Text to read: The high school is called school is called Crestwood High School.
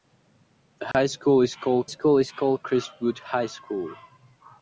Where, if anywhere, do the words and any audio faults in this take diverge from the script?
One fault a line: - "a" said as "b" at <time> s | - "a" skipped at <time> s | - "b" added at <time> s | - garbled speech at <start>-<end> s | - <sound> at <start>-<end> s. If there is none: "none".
- dropout at 0.9-0.9 s